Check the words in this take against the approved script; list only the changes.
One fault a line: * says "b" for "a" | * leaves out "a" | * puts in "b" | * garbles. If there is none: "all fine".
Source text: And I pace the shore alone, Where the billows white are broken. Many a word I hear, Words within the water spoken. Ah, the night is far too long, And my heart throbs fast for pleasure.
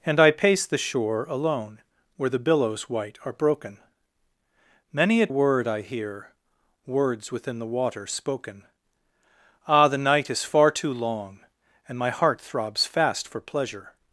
all fine